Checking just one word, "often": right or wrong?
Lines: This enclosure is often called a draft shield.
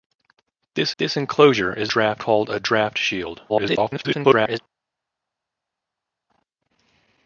wrong